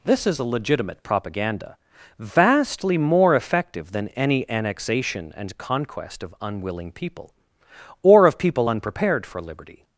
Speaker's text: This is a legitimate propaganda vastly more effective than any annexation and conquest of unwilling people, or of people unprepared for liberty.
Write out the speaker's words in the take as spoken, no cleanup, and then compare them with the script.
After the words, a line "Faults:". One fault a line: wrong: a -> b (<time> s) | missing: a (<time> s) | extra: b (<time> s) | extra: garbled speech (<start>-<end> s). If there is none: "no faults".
This is a legitimate propaganda vastly more effective than any annexation and conquest of unwilling people, or of people unprepared for liberty.
Faults:
no faults